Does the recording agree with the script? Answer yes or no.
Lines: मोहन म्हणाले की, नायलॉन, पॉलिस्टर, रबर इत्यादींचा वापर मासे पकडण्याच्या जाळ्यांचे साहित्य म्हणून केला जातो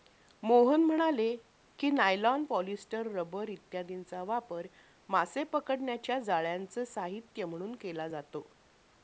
yes